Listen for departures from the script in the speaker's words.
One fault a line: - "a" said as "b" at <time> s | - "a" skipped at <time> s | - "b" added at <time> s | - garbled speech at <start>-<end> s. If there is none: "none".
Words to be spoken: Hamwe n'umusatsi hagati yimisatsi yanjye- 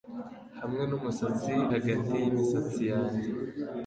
none